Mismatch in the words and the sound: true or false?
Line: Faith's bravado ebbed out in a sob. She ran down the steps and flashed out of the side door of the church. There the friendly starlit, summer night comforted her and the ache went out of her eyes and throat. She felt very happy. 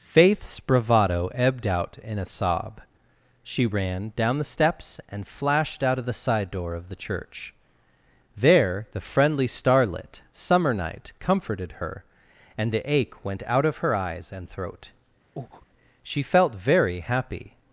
true